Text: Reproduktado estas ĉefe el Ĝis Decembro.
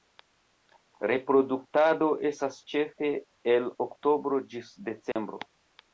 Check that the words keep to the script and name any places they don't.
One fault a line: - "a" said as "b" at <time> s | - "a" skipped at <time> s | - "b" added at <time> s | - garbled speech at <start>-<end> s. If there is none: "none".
- "Oktobro" added at 3.9 s